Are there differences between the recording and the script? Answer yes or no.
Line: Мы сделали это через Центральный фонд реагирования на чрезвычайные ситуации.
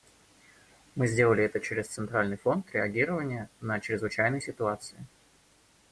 no